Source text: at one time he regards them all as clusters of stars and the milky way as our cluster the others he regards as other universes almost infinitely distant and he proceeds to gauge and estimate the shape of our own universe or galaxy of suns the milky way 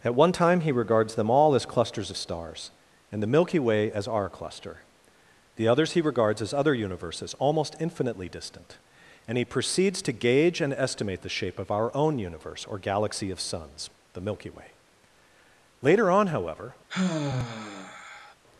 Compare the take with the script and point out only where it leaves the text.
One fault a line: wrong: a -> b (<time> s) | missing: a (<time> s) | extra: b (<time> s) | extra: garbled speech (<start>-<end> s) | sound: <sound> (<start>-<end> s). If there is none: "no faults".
extra: later on however (15.8 s)
sound: sigh (16.9-18.3 s)